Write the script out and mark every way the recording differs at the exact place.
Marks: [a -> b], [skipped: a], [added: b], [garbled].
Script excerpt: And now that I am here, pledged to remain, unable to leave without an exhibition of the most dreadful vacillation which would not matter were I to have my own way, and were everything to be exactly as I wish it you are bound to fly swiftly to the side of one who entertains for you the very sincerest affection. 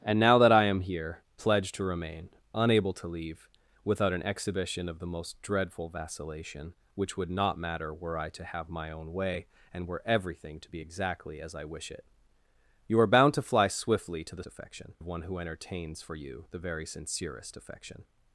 And now that I am here, pledged to remain, unable to leave without an exhibition of the most dreadful vacillation which would not matter were I to have my own way, and were everything to be exactly as I wish it you are bound to fly swiftly to the [side -> affection] of one who entertains for you the very sincerest affection.